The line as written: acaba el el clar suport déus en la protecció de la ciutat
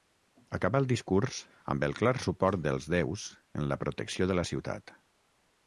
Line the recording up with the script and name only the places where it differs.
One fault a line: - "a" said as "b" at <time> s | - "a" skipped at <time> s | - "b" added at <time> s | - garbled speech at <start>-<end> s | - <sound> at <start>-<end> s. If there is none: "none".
- "discurs amb" added at 0.9 s
- "dels" added at 2.7 s